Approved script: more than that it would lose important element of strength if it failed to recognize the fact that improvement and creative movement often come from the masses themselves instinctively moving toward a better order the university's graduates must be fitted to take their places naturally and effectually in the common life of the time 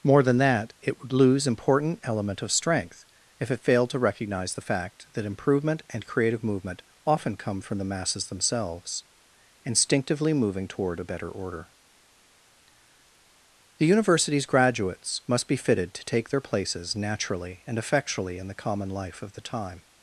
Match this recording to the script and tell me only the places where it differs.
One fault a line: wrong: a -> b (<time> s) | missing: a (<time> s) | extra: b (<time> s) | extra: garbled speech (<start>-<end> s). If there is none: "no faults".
no faults